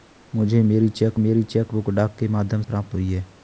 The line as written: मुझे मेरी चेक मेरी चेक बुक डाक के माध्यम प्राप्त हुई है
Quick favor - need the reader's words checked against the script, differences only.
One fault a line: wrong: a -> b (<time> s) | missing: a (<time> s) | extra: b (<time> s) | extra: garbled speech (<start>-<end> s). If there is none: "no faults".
no faults